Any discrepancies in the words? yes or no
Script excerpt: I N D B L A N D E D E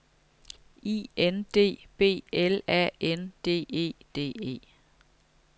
no